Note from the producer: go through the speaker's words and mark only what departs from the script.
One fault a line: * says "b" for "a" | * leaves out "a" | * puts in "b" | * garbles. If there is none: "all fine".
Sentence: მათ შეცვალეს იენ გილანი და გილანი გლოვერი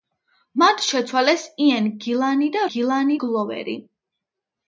all fine